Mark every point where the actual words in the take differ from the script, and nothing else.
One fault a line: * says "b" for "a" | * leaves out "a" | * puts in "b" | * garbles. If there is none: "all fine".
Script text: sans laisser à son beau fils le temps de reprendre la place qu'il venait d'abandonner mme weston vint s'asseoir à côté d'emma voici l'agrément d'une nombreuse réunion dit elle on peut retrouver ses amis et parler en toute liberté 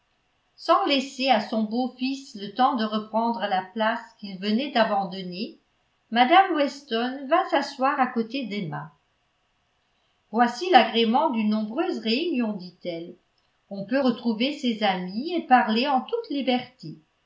all fine